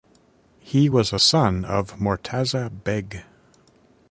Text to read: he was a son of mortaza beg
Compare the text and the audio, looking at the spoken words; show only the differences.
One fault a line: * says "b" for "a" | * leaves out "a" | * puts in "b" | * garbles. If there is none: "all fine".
all fine